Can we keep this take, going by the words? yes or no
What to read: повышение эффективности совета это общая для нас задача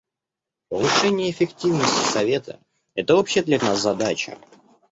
yes